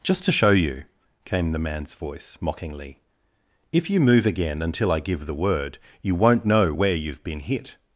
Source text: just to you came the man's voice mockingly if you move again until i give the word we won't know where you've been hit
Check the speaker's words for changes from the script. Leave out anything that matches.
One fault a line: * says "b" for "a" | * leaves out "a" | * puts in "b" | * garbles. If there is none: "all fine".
* puts in "show"
* says "you" for "we"